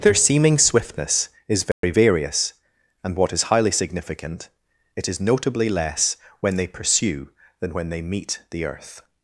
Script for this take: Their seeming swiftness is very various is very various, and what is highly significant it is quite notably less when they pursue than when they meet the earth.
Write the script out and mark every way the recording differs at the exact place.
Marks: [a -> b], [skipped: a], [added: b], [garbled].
Their seeming swiftness is very various [skipped: is very various,] and what is highly significant it is [skipped: quite] notably less when they pursue than when they meet the earth.